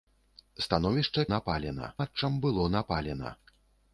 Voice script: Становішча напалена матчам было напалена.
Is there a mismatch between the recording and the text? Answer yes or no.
no